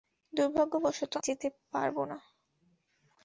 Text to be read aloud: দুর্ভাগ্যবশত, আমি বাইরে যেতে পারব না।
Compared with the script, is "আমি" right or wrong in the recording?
wrong